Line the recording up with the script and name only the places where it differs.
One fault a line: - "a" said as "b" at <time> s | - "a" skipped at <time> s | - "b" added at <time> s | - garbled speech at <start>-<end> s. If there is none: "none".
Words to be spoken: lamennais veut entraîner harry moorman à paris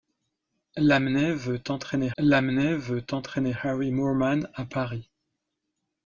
- "lamennais veut entraîner" added at 2.2 s